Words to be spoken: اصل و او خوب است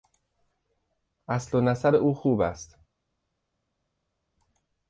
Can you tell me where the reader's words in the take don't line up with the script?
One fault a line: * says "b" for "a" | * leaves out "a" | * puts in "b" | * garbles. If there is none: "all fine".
* puts in "نسب"